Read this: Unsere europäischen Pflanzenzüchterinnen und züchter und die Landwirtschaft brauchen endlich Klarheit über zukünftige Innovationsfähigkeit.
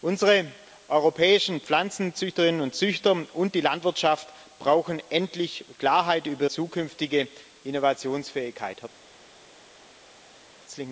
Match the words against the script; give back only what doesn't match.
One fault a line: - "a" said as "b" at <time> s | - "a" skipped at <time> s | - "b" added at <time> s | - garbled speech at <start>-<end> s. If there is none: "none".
none